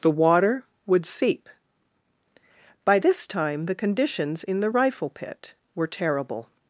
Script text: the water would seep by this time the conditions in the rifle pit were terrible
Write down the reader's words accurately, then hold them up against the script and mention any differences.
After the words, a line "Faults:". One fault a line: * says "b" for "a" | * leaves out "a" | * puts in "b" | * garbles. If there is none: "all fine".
the water would seep by this time the conditions in the rifle pit were terrible
Faults:
all fine